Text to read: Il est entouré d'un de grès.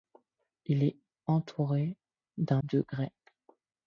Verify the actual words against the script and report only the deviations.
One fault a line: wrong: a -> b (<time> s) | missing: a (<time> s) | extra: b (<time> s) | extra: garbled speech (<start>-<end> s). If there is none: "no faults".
no faults